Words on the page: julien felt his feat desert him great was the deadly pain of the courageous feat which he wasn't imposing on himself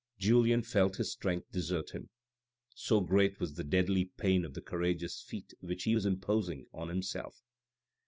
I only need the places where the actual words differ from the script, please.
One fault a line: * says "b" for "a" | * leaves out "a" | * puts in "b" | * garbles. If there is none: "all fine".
* says "strength" for "feat"
* puts in "so"
* says "was" for "wasn't"